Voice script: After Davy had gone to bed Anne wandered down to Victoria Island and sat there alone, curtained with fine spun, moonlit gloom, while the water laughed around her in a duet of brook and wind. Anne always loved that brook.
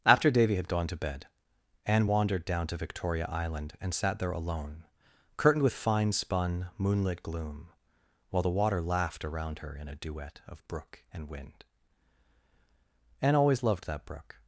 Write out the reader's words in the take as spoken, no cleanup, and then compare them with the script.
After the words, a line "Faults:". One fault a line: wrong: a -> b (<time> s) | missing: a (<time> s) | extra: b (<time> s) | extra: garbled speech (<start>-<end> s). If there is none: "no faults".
After Davy had gone to bed Anne wandered down to Victoria Island and sat there alone, curtained with fine spun, moonlit gloom, while the water laughed around her in a duet of brook and wind. Anne always loved that brook.
Faults:
no faults